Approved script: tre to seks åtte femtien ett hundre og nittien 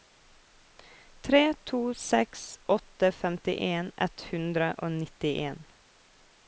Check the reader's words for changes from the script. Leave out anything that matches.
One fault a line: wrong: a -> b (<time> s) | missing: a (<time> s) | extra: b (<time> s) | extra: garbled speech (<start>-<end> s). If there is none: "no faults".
no faults